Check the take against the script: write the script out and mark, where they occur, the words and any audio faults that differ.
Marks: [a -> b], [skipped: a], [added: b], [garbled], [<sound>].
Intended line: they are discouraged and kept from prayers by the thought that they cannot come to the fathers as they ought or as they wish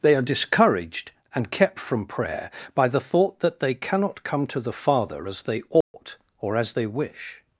they are discouraged and kept from [prayers -> prayer] by the thought that they cannot come to the [fathers -> father] as they ought [dropout] or as they wish